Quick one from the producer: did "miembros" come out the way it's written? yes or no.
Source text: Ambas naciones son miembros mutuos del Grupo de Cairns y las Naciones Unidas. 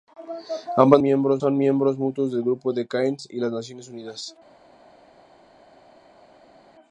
yes